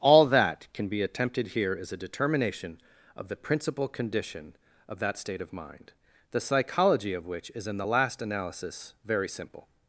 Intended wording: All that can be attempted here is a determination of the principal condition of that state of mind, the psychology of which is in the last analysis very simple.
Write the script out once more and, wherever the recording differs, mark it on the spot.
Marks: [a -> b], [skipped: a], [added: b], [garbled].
All that can be attempted here is a determination of the principal condition of that state of mind, the psychology of which is in the last analysis very simple.